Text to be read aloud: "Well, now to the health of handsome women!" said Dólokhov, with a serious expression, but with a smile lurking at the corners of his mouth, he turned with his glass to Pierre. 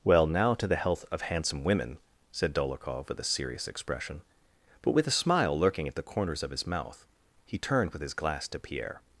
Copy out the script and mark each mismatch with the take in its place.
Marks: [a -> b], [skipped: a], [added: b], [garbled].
"Well, now to the health of handsome women!" said Dólokhov, with a serious expression, but with a smile lurking at the corners of his mouth, he turned with his glass to Pierre.